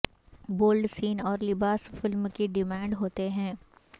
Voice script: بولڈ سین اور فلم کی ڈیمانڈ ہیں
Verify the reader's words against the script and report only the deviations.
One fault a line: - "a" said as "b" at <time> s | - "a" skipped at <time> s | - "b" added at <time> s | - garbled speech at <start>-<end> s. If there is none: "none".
- "لباس" added at 1.4 s
- "ہوتے" added at 3.0 s